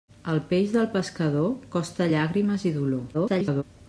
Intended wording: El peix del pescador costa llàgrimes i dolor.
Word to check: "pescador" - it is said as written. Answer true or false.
true